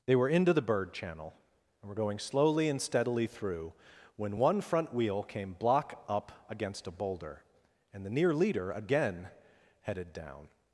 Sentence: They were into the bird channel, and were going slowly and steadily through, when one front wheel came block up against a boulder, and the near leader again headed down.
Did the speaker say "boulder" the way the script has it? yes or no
yes